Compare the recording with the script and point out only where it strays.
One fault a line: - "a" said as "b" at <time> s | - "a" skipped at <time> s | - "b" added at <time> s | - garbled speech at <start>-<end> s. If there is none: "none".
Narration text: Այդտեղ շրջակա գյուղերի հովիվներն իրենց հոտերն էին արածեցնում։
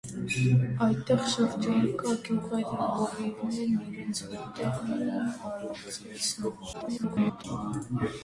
- garbled speech at 6.7-7.4 s